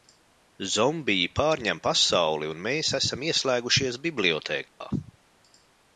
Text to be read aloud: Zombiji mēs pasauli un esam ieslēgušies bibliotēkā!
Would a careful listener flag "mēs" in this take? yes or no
yes